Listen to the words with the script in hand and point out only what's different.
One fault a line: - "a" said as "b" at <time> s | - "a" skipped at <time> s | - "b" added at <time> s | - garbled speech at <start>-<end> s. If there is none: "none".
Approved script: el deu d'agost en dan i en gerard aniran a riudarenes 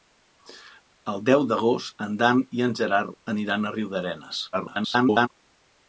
- garbled speech at 4.5-5.3 s